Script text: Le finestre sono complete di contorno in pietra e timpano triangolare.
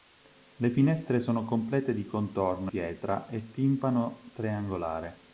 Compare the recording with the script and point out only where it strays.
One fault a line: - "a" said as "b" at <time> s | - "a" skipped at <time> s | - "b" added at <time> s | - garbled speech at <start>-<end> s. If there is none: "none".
- "in" skipped at 2.7 s